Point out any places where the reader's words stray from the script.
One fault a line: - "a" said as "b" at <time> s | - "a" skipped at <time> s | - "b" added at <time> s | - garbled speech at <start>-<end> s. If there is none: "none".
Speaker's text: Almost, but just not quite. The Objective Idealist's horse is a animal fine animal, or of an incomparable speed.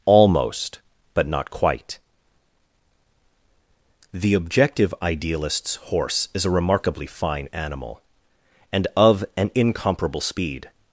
- "just" skipped at 1.3 s
- "animal" said as "remarkably" at 6.5 s
- "or" said as "and" at 8.7 s